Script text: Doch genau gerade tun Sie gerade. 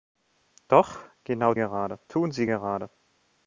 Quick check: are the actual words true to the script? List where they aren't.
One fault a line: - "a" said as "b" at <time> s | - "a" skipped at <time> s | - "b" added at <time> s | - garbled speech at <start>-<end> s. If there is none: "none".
none